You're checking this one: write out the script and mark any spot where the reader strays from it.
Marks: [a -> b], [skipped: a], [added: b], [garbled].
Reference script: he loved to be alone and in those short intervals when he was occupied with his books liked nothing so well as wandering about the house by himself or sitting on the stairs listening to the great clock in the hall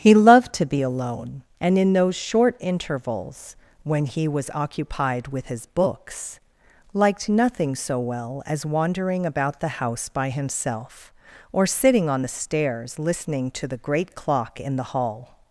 he loved to be alone and in those short intervals when he was occupied with his books liked nothing so well as wandering about the house by himself or sitting on the stairs listening to the great clock in the hall